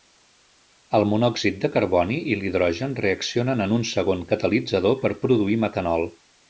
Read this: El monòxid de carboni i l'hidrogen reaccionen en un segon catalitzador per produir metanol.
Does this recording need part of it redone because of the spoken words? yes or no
no